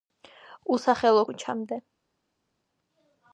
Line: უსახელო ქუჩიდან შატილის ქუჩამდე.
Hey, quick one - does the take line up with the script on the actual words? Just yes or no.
no